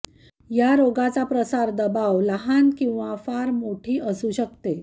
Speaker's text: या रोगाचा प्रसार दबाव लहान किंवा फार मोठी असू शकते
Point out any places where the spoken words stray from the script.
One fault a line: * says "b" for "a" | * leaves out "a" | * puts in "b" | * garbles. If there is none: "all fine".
all fine